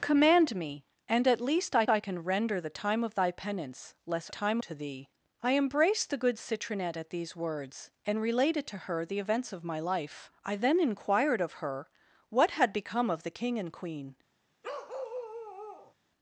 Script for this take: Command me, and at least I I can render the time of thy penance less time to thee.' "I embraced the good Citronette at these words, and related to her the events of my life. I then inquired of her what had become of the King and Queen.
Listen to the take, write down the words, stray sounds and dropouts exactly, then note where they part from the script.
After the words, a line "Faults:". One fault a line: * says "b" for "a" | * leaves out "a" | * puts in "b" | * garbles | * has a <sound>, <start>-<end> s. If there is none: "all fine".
Command me, and at least I I can render the time of thy penance less time to thee.' "I embraced the good Citronette at these words, and related to her the events of my life. I then inquired of her what had become of the King and Queen.
Faults:
* has a bark, 14.6-15.9 s